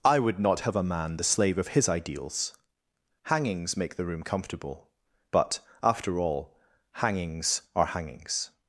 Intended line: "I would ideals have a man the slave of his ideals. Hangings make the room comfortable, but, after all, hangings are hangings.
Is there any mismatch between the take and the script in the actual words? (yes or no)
yes